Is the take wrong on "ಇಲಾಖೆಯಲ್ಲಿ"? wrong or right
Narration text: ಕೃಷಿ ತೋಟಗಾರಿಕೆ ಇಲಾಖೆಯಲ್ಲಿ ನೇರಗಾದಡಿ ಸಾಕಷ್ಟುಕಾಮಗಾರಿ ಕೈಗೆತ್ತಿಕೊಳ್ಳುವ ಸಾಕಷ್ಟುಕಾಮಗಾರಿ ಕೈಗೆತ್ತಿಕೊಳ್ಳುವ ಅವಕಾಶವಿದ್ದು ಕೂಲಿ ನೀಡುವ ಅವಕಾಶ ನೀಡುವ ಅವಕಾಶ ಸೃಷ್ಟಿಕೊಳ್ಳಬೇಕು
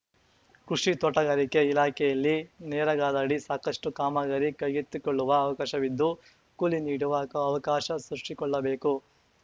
right